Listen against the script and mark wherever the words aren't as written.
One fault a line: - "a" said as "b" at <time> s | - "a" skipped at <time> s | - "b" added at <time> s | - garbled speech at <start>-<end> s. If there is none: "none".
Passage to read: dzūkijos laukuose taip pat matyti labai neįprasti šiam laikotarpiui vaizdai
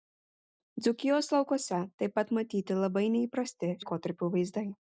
- "šiam" skipped at 3.7 s